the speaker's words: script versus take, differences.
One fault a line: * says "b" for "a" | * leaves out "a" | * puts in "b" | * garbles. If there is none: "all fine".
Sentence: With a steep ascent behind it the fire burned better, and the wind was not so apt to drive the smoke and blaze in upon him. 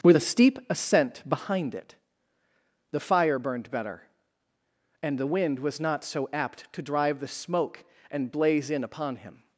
all fine